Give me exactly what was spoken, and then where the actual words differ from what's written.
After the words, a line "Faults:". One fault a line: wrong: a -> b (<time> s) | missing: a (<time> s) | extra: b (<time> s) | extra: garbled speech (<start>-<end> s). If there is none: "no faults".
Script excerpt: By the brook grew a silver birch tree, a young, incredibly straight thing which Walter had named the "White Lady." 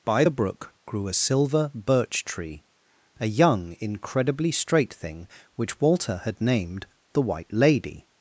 By the brook grew a silver birch tree, a young, incredibly straight thing which Walter had named the "White Lady."
Faults:
no faults